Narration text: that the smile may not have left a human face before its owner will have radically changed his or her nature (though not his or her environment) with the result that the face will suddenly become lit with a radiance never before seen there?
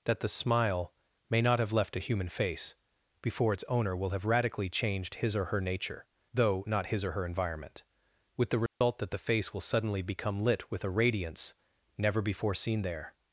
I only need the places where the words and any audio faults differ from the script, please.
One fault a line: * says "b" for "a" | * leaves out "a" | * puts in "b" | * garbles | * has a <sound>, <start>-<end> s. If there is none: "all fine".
* has a dropout, 8.7-8.8 s